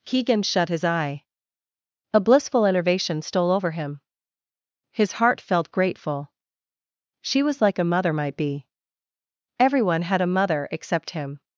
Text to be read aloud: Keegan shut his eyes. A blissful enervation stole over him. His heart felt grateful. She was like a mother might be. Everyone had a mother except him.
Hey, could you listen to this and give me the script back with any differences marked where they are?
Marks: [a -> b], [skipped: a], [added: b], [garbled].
Keegan shut his [eyes. -> eye] A blissful enervation stole over him. His heart felt grateful. She was like a mother might be. Everyone had a mother except him.